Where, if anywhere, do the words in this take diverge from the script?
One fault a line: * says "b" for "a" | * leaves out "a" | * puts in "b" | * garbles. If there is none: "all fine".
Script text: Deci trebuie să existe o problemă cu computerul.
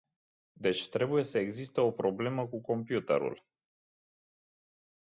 all fine